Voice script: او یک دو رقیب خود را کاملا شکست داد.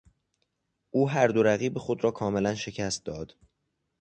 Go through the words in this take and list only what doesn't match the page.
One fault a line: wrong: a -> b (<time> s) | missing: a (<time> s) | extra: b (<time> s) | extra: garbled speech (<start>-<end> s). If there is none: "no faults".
wrong: یک -> هر (1.1 s)